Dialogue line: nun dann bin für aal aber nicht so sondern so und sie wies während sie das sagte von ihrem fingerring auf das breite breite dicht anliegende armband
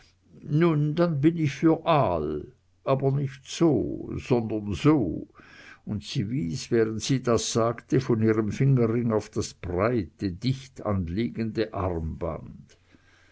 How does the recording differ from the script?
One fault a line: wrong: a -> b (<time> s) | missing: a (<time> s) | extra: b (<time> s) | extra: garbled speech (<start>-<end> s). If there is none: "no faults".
extra: ich (1.4 s)
missing: breite (10.3 s)